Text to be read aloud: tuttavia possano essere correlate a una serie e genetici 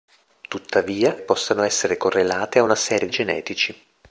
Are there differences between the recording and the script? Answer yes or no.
no